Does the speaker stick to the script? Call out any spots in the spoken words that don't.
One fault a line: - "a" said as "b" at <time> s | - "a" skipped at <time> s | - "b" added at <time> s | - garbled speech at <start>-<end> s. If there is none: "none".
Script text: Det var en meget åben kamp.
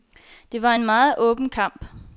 none